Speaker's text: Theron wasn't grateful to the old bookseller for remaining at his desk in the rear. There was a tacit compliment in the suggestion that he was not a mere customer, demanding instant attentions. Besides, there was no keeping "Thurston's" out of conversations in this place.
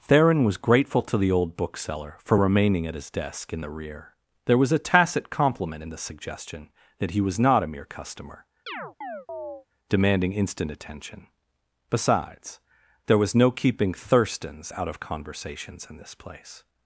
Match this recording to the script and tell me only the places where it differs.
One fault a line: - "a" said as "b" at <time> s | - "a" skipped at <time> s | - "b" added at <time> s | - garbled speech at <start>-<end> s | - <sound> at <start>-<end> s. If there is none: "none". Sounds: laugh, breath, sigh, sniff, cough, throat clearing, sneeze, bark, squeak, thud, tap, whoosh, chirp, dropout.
- "wasn't" said as "was" at 0.4 s
- chirp at 8.7-9.7 s
- "attentions" said as "attention" at 10.7 s